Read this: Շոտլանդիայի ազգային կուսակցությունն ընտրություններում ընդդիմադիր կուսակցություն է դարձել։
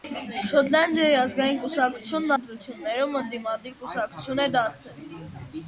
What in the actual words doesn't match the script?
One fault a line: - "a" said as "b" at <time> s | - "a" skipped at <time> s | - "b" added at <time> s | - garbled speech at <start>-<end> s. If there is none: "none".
none